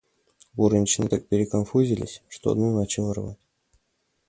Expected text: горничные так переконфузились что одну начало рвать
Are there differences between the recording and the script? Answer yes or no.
no